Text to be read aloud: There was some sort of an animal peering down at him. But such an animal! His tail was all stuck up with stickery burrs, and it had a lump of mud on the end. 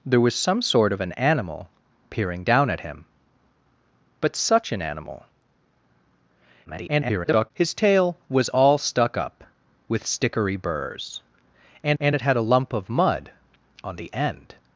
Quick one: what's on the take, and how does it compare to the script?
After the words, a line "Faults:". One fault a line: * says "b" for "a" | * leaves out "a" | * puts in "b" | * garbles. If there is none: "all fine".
There was some sort of an animal peering down at him. But such an animal! [garbled] His tail was all stuck up with stickery burrs, and and it had a lump of mud on the end.
Faults:
* garbles
* puts in "and"